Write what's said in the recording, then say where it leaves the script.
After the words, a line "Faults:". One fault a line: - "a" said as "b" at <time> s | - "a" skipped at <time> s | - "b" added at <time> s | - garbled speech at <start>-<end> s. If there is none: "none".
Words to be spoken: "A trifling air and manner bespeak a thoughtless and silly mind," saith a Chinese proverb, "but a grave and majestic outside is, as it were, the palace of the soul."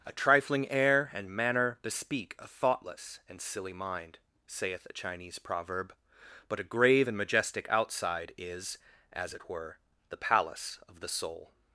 "A trifling air and manner bespeak a thoughtless and silly mind," saith a Chinese proverb, "but a grave and majestic outside is, as it were, the palace of the soul."
Faults:
none